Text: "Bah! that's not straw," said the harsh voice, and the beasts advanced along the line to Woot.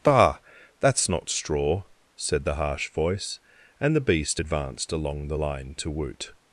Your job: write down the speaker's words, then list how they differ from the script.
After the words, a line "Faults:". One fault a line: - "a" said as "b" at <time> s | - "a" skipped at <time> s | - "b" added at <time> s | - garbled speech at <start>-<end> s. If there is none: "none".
"Bah! that's not straw," said the harsh voice, and the beast advanced along the line to Woot.
Faults:
- "beasts" said as "beast" at 4.0 s